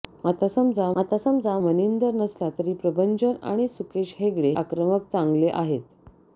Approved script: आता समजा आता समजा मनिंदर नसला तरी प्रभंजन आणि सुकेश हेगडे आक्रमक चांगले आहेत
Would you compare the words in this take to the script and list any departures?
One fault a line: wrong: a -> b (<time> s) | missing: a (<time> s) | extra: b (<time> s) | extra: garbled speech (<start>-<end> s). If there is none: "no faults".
no faults